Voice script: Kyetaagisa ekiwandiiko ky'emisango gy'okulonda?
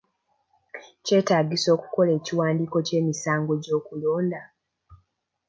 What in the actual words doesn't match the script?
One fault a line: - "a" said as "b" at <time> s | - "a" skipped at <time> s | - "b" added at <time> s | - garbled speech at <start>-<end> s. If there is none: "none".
- "okukola" added at 1.8 s